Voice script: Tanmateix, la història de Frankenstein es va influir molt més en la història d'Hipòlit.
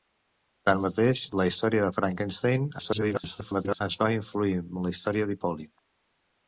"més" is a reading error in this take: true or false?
true